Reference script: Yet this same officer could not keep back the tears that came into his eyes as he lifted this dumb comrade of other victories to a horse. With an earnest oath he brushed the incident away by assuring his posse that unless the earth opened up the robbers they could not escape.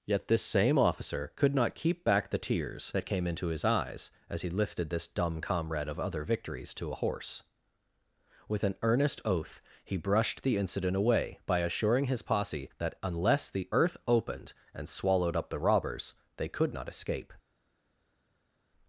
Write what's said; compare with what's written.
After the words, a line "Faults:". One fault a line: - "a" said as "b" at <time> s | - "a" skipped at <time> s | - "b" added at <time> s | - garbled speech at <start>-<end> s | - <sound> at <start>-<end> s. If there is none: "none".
Yet this same officer could not keep back the tears that came into his eyes as he lifted this dumb comrade of other victories to a horse. With an earnest oath he brushed the incident away by assuring his posse that unless the earth opened and swallowed up the robbers they could not escape.
Faults:
- "and swallowed" added at 14.7 s